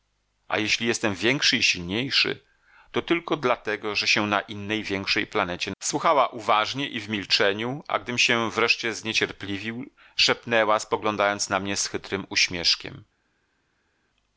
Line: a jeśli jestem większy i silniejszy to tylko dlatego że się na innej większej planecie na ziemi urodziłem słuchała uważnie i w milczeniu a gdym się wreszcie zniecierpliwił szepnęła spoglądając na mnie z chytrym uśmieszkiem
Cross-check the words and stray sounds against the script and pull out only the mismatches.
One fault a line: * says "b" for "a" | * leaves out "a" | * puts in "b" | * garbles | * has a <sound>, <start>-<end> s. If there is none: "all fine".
* leaves out "na ziemi urodziłem"